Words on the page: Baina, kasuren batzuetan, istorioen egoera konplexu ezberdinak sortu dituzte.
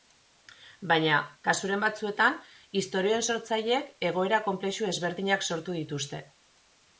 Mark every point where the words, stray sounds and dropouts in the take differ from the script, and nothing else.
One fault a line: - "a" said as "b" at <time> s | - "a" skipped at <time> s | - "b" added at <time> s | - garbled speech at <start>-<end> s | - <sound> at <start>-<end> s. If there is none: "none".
- "sortzaileek" added at 3.3 s